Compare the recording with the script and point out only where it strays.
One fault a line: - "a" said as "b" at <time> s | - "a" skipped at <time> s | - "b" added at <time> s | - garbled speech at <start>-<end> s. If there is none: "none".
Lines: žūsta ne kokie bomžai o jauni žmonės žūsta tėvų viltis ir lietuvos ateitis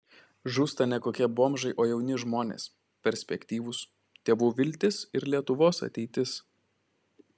- "žūsta" said as "perspektyvūs" at 3.1 s